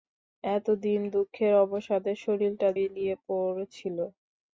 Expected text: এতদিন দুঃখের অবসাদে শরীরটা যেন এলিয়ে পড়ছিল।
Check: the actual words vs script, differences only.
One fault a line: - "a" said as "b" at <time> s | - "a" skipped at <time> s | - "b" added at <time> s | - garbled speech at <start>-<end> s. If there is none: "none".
- "যেন" skipped at 2.7 s